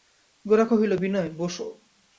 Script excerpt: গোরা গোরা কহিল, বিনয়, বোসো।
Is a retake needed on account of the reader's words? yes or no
yes